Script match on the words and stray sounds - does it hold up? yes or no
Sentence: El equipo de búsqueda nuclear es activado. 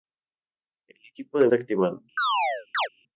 no